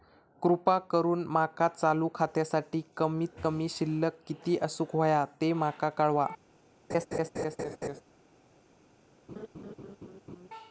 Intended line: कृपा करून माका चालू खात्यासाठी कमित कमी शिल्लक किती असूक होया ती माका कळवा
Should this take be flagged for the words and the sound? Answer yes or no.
yes